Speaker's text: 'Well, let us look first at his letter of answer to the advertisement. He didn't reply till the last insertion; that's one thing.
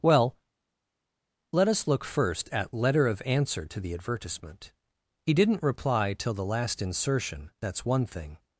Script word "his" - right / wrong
wrong